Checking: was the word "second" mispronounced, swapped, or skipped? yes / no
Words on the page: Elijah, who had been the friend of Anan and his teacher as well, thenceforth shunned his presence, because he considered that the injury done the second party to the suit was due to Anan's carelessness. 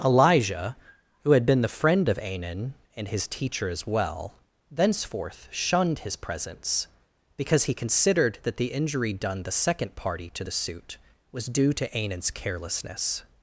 no